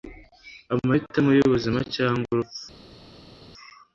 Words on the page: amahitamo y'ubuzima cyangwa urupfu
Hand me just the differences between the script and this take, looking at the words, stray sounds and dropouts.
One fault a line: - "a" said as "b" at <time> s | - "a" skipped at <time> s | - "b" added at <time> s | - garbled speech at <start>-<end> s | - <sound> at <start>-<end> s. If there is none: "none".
none